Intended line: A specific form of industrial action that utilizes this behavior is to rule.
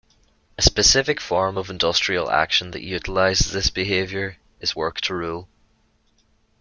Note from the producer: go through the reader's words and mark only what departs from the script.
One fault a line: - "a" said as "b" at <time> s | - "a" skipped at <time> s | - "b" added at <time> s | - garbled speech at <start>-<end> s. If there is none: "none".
- "work" added at 4.7 s